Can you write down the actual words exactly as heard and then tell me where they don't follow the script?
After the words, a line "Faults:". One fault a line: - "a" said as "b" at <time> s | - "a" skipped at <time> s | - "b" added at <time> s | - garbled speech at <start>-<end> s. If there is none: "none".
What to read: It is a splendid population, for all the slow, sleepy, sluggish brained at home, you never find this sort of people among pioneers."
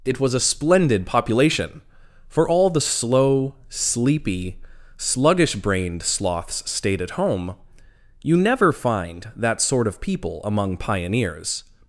It was a splendid population, for all the slow, sleepy, sluggish brained sloths stayed at home, you never find that sort of people among pioneers."
Faults:
- "is" said as "was" at 0.2 s
- "sloths stayed" added at 6.0 s
- "this" said as "that" at 9.4 s